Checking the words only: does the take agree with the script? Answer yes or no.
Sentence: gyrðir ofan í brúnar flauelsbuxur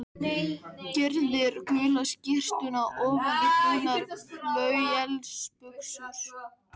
no